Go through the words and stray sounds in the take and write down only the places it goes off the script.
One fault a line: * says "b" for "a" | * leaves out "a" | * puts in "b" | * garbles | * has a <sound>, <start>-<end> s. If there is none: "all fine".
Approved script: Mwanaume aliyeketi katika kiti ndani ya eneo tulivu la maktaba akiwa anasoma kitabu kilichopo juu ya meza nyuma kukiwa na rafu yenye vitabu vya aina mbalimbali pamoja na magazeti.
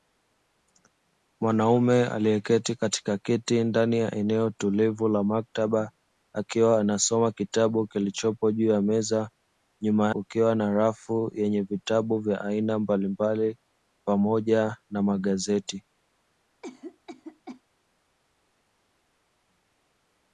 * has a cough, 16.6-17.6 s